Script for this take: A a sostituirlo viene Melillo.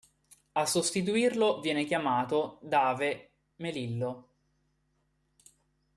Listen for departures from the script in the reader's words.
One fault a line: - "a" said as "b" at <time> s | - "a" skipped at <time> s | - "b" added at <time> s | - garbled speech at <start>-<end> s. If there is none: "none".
- "a" skipped at 0.7 s
- "chiamato Dave" added at 1.9 s